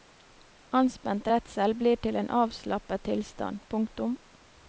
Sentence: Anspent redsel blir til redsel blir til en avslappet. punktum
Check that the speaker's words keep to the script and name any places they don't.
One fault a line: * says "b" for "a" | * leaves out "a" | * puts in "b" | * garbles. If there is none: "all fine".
* leaves out "redsel blir til"
* puts in "tilstand"